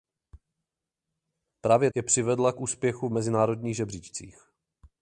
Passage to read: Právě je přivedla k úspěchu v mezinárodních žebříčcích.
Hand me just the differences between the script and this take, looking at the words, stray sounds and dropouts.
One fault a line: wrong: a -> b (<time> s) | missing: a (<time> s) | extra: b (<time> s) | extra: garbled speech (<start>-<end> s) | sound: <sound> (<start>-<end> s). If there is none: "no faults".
no faults